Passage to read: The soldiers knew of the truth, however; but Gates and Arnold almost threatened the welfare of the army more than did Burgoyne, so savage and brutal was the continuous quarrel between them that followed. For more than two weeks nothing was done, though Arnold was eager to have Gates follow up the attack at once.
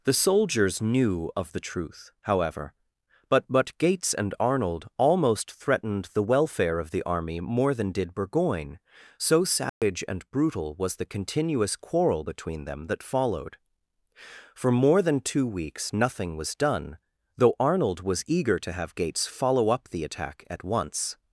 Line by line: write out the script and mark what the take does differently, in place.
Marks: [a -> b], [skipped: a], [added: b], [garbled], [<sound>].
The soldiers knew of the truth, however; but [added: but] Gates and Arnold almost threatened the welfare of the army more than did Burgoyne, so savage [dropout] and brutal was the continuous quarrel between them that followed. For more than two weeks nothing was done, though Arnold was eager to have Gates follow up the attack at once.